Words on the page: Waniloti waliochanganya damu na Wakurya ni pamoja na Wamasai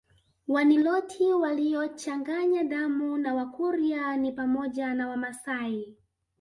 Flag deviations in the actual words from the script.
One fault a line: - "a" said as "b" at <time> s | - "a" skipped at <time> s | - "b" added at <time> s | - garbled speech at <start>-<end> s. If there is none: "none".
none